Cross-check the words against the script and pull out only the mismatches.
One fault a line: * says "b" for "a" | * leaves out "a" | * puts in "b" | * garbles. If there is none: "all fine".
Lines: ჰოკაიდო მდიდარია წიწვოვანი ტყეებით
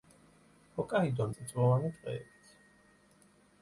* leaves out "მდიდარია"